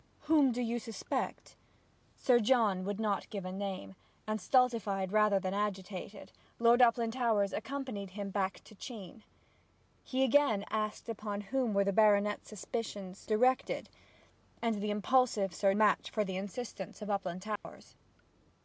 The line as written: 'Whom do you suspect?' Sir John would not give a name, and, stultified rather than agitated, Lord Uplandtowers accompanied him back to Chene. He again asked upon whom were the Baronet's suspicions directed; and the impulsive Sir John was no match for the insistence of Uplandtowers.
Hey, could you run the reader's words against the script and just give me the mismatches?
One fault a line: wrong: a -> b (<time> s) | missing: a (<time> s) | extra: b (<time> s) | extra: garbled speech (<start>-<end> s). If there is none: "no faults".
missing: John was no (15.8 s)